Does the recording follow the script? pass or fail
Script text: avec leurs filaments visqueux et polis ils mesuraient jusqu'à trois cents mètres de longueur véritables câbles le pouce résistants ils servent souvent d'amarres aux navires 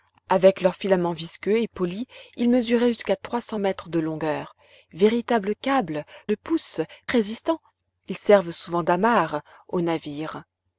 pass